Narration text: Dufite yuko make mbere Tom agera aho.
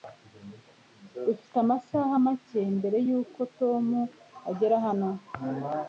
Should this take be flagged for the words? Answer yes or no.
yes